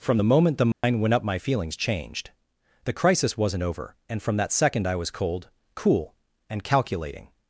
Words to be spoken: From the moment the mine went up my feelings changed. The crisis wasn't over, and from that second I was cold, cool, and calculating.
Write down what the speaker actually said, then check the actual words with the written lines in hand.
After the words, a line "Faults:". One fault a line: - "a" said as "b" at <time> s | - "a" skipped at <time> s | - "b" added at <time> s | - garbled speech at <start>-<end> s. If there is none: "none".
From the moment the mine went up my feelings changed. The crisis wasn't over, and from that second I was cold, cool, and calculating.
Faults:
none